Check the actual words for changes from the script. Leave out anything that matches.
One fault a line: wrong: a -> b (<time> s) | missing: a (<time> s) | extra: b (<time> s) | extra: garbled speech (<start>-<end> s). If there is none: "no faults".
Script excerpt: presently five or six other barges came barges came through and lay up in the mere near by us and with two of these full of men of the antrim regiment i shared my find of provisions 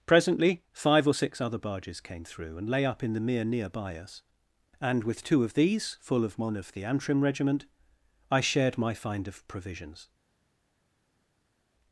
missing: barges came (2.2 s)